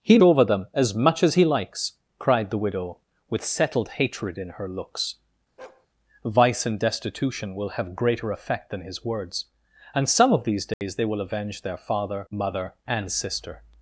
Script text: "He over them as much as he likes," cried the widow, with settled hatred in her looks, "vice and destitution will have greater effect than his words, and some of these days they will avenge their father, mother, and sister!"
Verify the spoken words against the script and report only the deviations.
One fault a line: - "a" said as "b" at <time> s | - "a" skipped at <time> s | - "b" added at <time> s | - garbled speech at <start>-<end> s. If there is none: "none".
none